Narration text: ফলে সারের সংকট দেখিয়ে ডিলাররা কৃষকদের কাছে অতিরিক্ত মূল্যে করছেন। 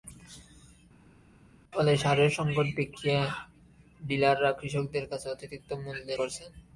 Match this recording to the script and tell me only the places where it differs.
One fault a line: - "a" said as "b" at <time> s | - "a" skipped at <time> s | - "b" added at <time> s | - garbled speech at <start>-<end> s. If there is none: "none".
none